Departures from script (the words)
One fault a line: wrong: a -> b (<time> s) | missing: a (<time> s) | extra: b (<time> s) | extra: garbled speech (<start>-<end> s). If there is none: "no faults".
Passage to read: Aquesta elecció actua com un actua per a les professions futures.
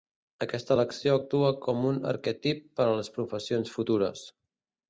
wrong: actua -> arquetip (2.1 s)